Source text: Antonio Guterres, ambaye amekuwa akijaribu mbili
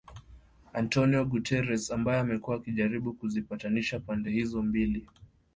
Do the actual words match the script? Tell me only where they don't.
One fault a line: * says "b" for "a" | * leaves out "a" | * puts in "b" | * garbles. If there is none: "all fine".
* puts in "kuzipatanisha pande hizo"